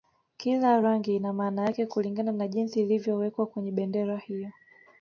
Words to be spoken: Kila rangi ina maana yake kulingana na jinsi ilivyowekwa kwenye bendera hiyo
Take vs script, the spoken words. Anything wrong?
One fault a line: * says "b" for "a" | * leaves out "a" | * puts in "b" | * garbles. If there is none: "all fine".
all fine